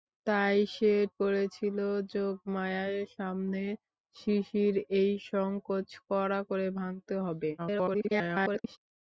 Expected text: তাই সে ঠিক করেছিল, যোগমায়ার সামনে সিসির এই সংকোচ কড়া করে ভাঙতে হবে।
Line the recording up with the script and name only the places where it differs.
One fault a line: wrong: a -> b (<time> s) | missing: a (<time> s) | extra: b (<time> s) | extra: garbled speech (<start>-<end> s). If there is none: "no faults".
missing: ঠিক (0.9 s)
extra: garbled speech (7.6-8.8 s)